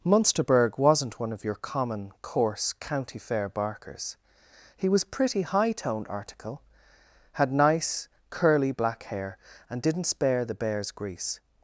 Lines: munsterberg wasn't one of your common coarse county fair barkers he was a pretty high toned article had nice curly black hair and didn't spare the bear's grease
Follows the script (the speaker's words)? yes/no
no